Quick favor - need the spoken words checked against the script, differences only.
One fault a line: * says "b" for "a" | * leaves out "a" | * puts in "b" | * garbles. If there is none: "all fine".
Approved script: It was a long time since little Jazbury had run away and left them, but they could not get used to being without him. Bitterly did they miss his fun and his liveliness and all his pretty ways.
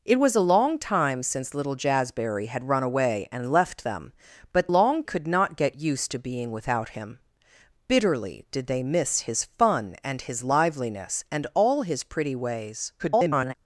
* says "long" for "they"
* garbles